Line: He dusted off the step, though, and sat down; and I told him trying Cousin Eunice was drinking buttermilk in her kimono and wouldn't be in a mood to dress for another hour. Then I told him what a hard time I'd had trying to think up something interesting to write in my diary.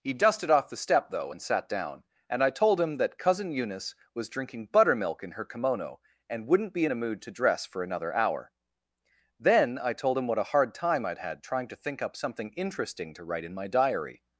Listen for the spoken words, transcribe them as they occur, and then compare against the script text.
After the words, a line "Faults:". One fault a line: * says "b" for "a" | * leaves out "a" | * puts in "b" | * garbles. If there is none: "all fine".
He dusted off the step, though, and sat down; and I told him that Cousin Eunice was drinking buttermilk in her kimono and wouldn't be in a mood to dress for another hour. Then I told him what a hard time I'd had trying to think up something interesting to write in my diary.
Faults:
* says "that" for "trying"